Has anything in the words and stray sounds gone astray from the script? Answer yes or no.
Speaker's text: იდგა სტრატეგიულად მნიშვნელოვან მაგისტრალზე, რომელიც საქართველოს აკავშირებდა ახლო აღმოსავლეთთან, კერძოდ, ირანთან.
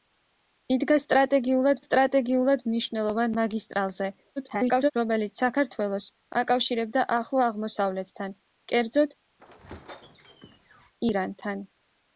yes